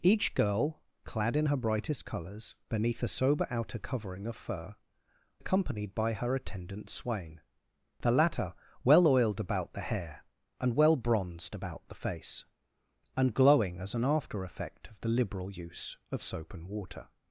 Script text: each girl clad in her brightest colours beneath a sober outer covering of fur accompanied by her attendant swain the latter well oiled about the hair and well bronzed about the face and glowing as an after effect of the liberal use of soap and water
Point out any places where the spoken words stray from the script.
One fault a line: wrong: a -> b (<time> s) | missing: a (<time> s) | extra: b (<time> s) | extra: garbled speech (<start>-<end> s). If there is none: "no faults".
no faults